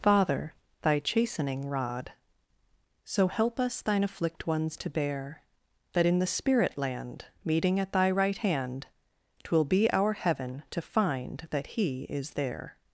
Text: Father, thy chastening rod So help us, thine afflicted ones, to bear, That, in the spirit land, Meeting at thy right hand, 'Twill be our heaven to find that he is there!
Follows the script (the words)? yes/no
no